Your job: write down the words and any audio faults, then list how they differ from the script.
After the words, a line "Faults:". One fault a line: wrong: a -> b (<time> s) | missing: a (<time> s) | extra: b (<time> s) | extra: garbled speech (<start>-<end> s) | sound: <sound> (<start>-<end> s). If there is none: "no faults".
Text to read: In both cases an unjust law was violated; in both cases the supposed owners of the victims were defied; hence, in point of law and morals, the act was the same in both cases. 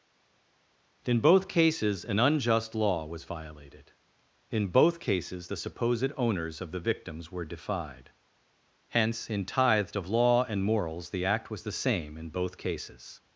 In both cases an unjust law was violated; in both cases the supposed owners of the victims were defied; hence, in tithed of law and morals, the act was the same in both cases.
Faults:
wrong: point -> tithed (9.4 s)